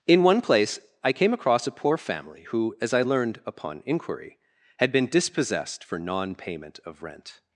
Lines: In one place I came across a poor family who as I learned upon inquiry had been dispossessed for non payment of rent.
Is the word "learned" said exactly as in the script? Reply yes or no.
yes